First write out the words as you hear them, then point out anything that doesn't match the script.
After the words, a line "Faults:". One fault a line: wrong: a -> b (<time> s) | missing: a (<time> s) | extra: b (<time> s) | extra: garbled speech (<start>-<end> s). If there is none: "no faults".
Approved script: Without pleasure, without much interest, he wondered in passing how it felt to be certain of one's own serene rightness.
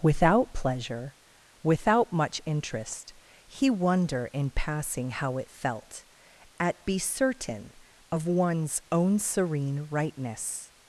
Without pleasure, without much interest, he wonder in passing how it felt at be certain of one's own serene rightness.
Faults:
wrong: wondered -> wonder (3.7 s)
wrong: to -> at (6.6 s)